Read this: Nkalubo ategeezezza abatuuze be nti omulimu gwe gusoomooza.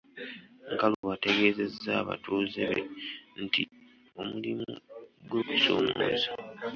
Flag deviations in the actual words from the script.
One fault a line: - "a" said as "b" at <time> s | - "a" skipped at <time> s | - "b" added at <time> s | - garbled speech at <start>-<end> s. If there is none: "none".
none